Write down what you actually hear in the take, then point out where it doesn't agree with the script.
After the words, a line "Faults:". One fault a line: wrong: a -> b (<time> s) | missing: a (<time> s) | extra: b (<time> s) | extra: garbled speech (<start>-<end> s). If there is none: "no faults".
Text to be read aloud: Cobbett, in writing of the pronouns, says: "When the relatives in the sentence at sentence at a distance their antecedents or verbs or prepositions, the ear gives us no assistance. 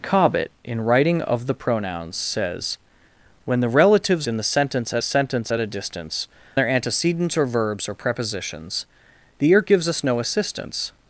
Cobbett, in writing of the pronouns, says: "When the relatives in the sentence at sentence at a distance their antecedents or verbs or prepositions, the ear gives us no assistance.
Faults:
no faults